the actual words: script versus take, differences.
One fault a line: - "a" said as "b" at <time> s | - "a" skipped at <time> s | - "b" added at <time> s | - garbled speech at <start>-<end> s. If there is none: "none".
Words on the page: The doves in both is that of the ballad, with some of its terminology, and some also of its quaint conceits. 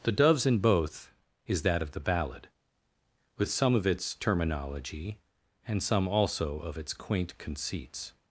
none